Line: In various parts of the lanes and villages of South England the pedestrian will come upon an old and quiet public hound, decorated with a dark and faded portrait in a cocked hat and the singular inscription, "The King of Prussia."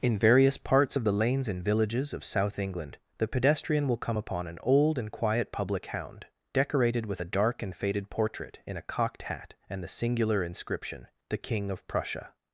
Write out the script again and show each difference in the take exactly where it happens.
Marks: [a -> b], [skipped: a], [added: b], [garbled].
In various parts of the lanes and villages of South England the pedestrian will come upon an old and quiet public hound, decorated with a dark and faded portrait in a cocked hat and the singular inscription, "The King of Prussia."